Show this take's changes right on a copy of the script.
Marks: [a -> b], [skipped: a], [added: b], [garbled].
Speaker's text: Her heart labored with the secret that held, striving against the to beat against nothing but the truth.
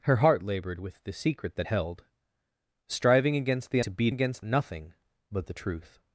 Her heart labored with the secret that held, striving against the to beat against nothing but the truth.